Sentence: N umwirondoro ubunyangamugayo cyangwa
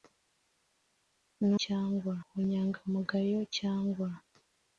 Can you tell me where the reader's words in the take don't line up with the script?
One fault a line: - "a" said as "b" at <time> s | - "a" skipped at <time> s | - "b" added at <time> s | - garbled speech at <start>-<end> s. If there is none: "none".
- "umwirondoro" said as "cyangwa" at 1.6 s